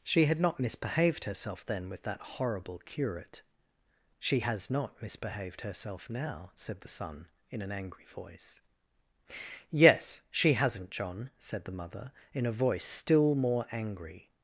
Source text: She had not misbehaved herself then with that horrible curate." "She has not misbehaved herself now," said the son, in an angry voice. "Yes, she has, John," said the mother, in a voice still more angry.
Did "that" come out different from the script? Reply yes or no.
no